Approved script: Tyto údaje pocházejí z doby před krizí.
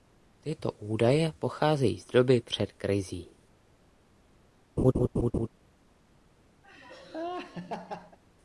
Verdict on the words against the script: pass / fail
pass